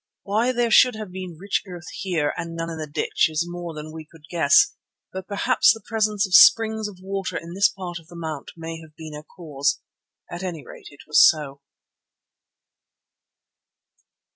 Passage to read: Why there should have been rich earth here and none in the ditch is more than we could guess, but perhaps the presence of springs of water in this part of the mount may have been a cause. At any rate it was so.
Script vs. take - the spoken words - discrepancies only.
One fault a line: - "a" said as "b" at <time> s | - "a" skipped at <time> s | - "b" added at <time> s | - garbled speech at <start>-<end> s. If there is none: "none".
none